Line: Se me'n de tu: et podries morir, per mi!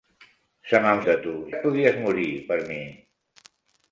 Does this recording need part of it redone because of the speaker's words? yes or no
no